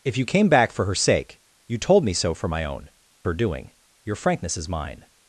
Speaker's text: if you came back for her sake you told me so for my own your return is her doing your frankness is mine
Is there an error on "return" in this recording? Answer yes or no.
yes